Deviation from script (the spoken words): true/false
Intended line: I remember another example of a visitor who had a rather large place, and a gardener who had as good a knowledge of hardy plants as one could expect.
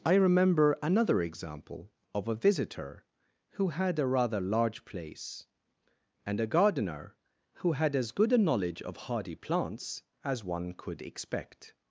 false